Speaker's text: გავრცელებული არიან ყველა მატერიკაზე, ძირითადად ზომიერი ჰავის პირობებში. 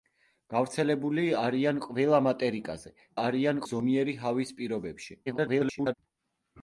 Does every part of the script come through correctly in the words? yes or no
no